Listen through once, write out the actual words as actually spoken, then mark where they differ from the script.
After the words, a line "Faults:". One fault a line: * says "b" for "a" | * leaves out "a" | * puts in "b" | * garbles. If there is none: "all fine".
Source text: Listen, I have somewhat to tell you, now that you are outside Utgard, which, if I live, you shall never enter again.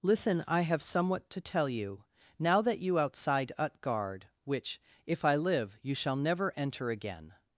Listen, I have somewhat to tell you, now that you outside Utgard, which, if I live, you shall never enter again.
Faults:
* leaves out "are"